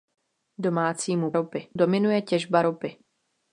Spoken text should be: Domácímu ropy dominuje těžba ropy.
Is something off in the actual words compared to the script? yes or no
no